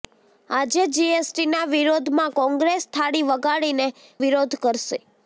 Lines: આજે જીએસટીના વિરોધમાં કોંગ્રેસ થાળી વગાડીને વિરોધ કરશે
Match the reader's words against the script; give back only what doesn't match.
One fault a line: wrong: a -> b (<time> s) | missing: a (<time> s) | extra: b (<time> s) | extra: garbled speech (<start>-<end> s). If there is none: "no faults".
no faults